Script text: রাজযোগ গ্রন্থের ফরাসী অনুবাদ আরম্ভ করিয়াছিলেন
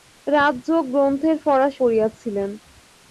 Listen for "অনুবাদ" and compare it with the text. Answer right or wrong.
wrong